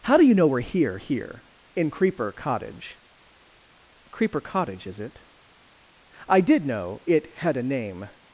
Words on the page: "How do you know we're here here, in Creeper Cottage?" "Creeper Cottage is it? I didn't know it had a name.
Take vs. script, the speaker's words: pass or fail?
fail